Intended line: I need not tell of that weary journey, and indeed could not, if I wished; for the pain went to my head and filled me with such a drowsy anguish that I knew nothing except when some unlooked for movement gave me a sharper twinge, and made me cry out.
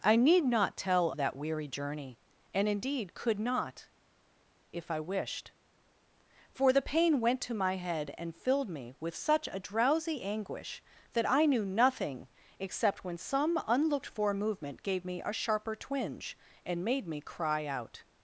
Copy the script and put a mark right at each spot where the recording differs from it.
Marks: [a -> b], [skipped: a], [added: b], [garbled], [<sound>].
I need not tell [skipped: of] that weary journey, and indeed could not, if I wished; for the pain went to my head and filled me with such a drowsy anguish that I knew nothing except when some unlooked for movement gave me a sharper twinge, and made me cry out.